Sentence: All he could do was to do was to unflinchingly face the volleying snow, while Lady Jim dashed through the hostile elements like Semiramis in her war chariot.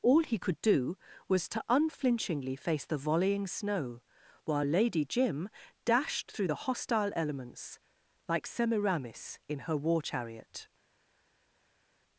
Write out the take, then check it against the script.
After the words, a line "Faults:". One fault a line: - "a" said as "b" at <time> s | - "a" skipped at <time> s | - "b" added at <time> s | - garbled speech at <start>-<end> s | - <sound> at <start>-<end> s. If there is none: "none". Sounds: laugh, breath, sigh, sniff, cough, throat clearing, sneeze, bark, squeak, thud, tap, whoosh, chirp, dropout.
All he could do was to unflinchingly face the volleying snow, while Lady Jim dashed through the hostile elements like Semiramis in her war chariot.
Faults:
- "do was to" skipped at 1.6 s